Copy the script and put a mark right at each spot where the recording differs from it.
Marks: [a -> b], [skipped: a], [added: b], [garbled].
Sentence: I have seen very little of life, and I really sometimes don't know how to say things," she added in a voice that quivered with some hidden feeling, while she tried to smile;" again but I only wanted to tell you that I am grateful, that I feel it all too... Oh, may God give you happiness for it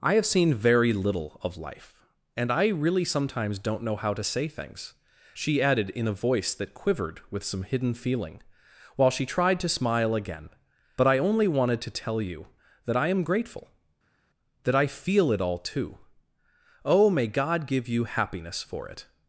I have seen very little of life, and I really sometimes don't know how to say things," she added in a voice that quivered with some hidden feeling, while she tried to smile;" again but I only wanted to tell you that I am grateful, that I feel it all too... Oh, may God give you happiness for it